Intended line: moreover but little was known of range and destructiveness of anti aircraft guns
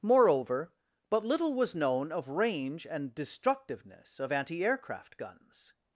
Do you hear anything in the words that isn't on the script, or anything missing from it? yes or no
no